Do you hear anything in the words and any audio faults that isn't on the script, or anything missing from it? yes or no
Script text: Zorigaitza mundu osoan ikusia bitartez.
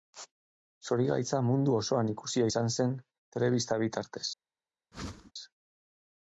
yes